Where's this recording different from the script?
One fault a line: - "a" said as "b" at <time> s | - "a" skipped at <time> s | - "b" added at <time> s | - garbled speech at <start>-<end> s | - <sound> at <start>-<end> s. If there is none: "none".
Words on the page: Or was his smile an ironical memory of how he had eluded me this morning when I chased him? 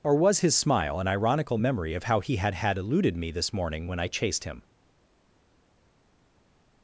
- "had" added at 2.5 s